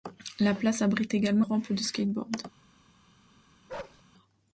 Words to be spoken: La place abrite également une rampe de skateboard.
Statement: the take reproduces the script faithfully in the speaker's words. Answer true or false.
false